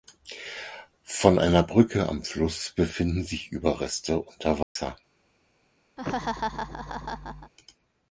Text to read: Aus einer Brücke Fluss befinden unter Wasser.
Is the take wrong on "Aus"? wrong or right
wrong